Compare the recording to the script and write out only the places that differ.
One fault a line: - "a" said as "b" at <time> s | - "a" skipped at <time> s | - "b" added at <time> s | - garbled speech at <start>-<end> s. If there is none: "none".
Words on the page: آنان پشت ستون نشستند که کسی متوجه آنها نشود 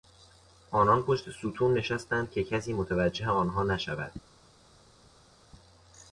none